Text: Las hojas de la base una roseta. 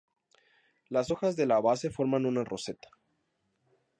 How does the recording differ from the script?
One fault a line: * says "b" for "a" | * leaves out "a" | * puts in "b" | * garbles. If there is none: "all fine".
* puts in "forman"